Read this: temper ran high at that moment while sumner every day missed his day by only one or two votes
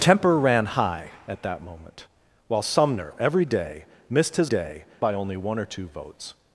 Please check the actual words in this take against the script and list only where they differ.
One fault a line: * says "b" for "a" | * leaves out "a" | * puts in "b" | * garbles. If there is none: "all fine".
all fine